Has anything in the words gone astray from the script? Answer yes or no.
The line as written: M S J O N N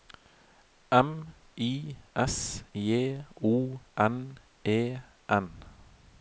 yes